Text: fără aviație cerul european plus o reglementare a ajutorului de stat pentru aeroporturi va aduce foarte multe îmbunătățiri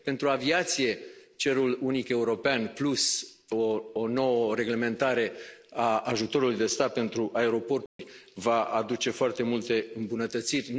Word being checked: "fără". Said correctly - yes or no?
no